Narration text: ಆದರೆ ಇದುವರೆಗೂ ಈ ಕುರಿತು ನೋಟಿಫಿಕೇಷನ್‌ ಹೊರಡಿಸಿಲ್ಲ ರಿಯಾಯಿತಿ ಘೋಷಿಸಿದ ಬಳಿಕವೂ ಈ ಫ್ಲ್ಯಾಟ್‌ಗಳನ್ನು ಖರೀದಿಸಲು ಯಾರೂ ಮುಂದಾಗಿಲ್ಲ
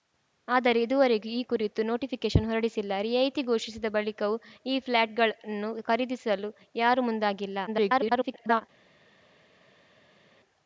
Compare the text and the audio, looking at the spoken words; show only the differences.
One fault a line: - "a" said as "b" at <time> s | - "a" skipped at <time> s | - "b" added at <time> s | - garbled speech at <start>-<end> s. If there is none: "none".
- garbled speech at 7.7-8.6 s